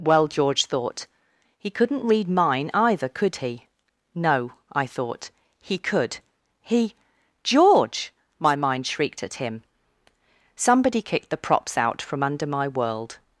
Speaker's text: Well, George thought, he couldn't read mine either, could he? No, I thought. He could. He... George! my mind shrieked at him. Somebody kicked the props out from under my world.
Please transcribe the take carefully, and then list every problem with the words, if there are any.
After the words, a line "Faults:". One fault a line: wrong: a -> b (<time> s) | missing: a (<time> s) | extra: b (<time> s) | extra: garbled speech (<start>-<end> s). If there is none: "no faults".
Well, George thought, he couldn't read mine either, could he? No, I thought. He could. He... George! my mind shrieked at him. Somebody kicked the props out from under my world.
Faults:
no faults